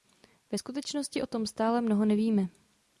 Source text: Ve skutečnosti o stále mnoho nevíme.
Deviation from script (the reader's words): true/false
true